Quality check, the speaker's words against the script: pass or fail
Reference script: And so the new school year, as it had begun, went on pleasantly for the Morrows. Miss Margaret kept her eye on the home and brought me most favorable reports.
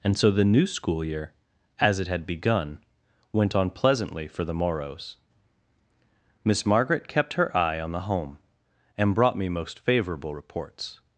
pass